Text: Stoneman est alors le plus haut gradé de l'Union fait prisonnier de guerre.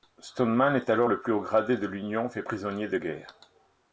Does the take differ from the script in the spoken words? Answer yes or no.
no